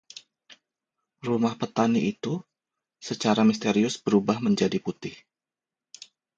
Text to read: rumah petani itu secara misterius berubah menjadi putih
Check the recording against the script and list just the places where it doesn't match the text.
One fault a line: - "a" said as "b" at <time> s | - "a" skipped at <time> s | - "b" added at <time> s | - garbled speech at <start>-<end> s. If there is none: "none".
none